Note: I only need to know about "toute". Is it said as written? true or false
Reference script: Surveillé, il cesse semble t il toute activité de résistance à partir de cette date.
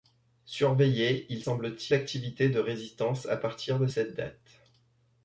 false